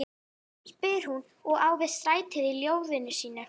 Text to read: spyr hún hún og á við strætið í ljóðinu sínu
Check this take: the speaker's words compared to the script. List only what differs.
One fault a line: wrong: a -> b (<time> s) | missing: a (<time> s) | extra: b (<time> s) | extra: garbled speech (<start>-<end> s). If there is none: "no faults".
missing: hún (1.2 s)